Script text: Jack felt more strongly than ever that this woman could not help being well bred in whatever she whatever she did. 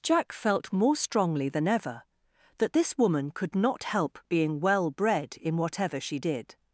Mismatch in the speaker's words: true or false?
true